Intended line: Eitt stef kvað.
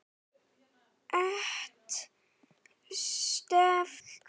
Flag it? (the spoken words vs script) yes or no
no